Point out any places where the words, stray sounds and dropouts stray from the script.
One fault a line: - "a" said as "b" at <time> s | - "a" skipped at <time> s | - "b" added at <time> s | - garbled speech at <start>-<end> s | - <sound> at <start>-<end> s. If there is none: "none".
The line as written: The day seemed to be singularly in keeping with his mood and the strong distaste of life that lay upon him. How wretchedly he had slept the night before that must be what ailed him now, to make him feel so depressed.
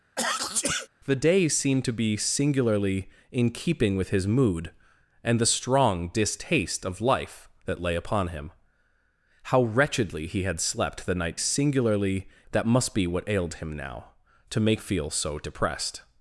- sneeze at 0.2-0.9 s
- "before" said as "singularly" at 11.3 s
- "him" skipped at 14.8 s